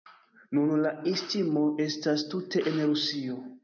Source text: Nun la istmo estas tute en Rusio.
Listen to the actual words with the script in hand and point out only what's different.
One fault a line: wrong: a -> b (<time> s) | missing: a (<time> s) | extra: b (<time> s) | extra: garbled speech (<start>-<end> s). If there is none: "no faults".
no faults